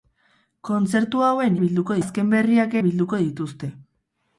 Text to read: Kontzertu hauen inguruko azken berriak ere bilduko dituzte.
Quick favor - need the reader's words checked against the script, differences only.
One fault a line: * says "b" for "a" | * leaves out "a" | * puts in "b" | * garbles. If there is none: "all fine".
* says "bilduko" for "inguruko"
* leaves out "ere"